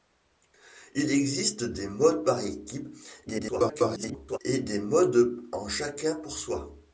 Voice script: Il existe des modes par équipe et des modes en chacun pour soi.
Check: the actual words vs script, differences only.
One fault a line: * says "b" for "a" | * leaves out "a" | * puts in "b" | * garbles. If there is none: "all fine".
* garbles